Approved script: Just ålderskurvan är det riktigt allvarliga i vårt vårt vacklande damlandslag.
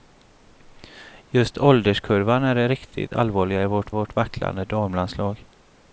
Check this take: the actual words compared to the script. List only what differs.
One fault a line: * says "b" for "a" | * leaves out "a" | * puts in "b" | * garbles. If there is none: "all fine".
all fine